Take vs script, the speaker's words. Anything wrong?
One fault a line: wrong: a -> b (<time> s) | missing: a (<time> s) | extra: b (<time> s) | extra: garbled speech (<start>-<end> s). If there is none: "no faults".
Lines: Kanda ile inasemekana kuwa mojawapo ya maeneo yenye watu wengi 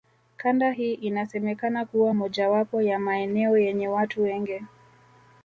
wrong: ile -> hii (0.7 s)